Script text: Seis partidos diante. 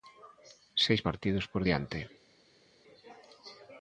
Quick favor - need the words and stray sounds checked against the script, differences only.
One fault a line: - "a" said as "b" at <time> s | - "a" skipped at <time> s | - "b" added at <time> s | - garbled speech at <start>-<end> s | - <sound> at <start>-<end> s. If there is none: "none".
- "por" added at 1.5 s